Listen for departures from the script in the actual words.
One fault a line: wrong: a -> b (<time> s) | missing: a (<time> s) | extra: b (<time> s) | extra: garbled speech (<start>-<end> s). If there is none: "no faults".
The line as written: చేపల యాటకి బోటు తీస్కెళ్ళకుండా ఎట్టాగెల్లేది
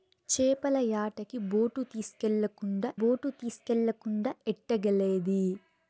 extra: బోటు తీస్కెళ్ళకుండా (3.0 s)